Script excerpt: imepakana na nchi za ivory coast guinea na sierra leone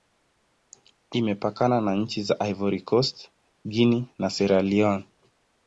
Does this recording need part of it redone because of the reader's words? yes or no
no